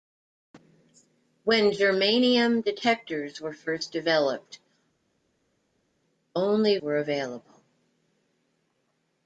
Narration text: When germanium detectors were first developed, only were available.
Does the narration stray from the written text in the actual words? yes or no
no